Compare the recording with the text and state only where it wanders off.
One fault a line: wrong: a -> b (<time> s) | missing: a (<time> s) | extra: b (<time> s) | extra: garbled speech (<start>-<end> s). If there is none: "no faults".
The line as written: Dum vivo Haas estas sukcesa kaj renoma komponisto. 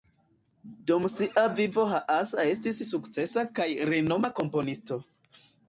extra: sia (1.1 s)
wrong: estas -> estis (2.5 s)